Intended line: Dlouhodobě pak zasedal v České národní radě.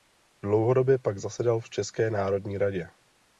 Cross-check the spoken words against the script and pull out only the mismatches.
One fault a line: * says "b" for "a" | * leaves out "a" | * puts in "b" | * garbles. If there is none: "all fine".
all fine